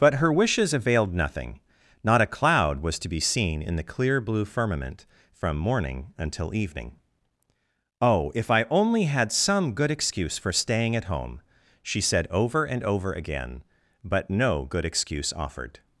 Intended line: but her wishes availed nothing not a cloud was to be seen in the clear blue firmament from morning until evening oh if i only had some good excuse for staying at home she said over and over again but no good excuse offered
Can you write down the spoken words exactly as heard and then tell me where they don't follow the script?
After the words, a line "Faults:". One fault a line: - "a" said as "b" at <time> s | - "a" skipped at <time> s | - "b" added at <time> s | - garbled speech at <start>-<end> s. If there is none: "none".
but her wishes availed nothing not a cloud was to be seen in the clear blue firmament from morning until evening oh if i only had some good excuse for staying at home she said over and over again but no good excuse offered
Faults:
none